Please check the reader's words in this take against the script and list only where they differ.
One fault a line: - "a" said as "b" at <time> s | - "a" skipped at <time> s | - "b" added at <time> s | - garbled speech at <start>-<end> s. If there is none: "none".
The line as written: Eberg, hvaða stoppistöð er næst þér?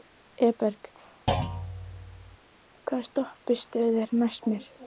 - "þér" said as "mér" at 4.5 s